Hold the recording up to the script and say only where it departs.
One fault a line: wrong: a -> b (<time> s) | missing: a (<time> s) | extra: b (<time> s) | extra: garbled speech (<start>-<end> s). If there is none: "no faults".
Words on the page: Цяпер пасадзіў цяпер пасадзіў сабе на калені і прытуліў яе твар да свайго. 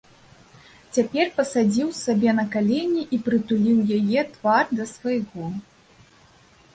missing: цяпер пасадзіў (1.9 s)